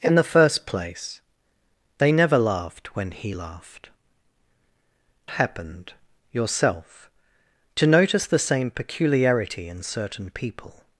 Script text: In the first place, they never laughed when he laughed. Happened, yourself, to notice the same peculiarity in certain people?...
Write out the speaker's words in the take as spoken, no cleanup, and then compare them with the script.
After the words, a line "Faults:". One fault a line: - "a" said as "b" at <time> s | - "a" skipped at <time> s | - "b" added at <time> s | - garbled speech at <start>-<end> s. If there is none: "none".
In the first place, they never laughed when he laughed. Happened, yourself, to notice the same peculiarity in certain people?...
Faults:
none